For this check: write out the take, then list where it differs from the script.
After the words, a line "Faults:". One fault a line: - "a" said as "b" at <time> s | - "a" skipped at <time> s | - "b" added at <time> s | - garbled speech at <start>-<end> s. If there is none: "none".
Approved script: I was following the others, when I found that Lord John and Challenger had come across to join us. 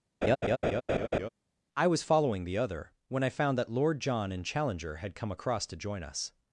I was following the other, when I found that Lord John and Challenger had come across to join us.
Faults:
- "others" said as "other" at 2.6 s